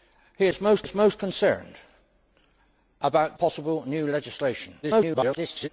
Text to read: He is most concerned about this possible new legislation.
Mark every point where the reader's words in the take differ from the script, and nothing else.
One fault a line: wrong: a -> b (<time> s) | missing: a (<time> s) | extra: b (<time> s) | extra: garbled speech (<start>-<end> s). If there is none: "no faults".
extra: is most (0.8 s)
missing: this (3.4 s)
extra: garbled speech (4.8-5.7 s)